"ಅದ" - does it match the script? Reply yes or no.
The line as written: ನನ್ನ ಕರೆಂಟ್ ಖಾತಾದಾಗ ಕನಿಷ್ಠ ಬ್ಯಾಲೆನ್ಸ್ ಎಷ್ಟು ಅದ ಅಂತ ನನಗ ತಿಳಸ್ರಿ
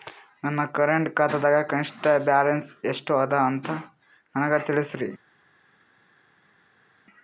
yes